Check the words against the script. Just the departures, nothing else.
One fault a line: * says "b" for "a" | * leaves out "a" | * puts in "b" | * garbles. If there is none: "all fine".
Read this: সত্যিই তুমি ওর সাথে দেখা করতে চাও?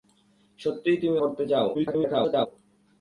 * leaves out "ওর সাথে দেখা"
* garbles